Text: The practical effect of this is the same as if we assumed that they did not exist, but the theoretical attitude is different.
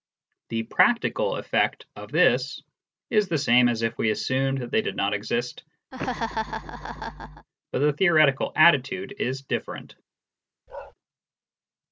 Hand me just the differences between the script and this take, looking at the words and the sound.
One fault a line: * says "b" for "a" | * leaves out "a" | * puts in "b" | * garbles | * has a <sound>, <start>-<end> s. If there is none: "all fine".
* has a laugh, 5.9-7.5 s
* has a bark, 10.7-10.9 s